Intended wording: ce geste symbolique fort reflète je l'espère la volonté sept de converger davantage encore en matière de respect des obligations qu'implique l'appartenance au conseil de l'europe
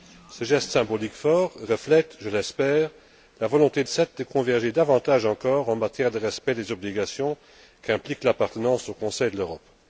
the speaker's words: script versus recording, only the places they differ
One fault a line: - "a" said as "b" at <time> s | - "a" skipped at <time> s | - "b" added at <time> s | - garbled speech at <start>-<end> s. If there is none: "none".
none